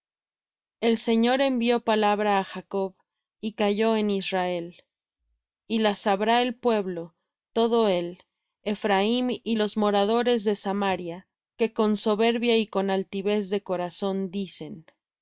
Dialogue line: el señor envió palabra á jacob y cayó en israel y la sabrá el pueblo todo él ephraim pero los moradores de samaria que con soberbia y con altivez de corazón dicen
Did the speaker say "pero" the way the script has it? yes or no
no